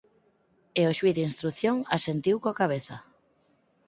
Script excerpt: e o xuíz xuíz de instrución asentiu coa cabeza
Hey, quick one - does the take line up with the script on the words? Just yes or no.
no